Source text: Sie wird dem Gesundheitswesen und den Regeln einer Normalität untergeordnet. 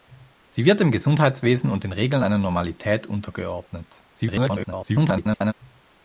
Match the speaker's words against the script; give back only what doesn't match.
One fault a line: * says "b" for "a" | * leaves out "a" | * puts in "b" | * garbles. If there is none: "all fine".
* garbles